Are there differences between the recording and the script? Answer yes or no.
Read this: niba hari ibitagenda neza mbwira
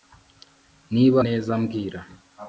yes